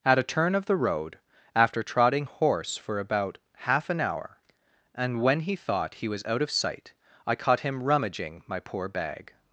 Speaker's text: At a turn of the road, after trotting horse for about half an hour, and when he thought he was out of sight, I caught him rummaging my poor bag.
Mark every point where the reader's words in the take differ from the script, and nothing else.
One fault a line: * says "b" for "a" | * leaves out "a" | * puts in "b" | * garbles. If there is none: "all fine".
all fine